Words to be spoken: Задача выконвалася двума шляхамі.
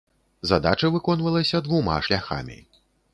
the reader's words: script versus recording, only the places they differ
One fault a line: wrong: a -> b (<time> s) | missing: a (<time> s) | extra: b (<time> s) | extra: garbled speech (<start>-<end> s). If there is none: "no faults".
no faults